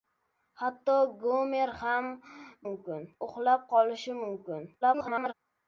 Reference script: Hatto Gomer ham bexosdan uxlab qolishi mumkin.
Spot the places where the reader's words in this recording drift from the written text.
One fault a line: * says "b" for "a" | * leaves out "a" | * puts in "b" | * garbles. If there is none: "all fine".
* says "mumkin" for "bexosdan"
* garbles